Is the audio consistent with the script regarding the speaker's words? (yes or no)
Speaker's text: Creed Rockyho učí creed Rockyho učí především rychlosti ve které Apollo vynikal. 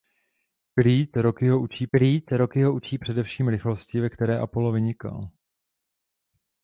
yes